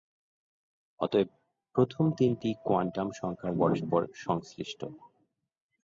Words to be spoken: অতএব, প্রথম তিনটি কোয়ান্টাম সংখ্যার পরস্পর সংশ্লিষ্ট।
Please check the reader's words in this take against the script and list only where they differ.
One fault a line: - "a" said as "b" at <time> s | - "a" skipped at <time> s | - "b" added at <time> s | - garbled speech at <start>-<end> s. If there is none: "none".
none